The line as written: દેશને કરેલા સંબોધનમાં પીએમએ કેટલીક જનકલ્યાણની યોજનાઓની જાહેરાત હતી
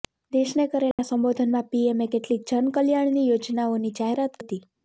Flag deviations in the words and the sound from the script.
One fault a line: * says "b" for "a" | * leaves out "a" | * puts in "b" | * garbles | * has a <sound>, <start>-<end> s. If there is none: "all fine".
* has a dropout, 0.9-1.0 s